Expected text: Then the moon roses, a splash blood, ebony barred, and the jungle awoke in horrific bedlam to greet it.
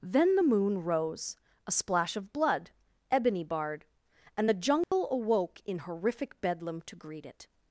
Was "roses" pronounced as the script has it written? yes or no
no